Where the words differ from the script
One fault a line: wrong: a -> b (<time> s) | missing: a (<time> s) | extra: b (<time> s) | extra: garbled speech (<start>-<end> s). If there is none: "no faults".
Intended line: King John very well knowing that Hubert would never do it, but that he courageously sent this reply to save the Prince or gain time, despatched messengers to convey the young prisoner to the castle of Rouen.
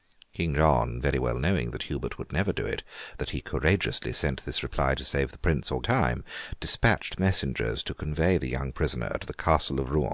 missing: but (2.8 s)
missing: gain (5.8 s)